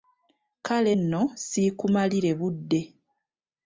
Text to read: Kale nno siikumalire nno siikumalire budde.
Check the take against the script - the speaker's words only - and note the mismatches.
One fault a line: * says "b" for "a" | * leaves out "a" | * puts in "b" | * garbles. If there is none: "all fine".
* leaves out "nno siikumalire"